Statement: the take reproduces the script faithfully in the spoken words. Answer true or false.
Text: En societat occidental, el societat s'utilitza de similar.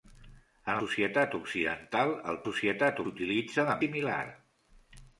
true